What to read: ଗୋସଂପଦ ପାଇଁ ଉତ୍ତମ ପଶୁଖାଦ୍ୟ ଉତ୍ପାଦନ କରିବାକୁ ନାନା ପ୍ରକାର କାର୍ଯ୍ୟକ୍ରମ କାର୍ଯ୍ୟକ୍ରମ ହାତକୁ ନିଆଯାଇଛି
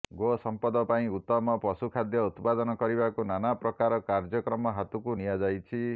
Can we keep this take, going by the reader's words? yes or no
no